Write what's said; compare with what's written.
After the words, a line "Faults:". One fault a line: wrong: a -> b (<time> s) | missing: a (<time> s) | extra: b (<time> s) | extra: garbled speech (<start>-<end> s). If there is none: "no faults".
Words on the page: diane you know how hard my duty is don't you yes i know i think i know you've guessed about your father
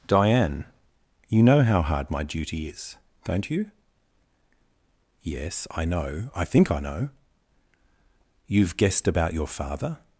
diane you know how hard my duty is don't you yes i know i think i know you've guessed about your father
Faults:
no faults